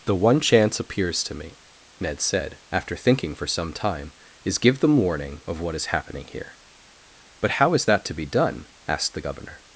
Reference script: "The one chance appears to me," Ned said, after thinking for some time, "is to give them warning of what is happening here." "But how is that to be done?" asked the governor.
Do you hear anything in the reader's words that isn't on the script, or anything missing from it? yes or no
yes